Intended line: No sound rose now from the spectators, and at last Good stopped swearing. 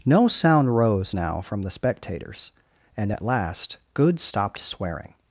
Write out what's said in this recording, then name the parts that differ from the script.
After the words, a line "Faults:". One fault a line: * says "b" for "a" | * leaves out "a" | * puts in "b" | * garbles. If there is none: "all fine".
No sound rose now from the spectators, and at last Good stopped swearing.
Faults:
all fine